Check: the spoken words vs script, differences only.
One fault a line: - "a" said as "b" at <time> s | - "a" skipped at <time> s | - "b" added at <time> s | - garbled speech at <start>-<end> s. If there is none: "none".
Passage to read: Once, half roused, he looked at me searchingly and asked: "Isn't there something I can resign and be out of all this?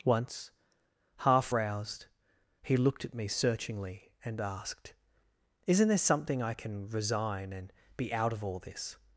none